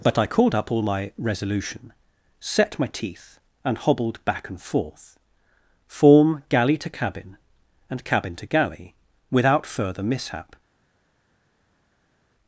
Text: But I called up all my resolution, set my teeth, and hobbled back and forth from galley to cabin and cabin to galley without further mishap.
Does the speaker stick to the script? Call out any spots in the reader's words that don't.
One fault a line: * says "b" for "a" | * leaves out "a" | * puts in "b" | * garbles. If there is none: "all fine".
* says "form" for "from"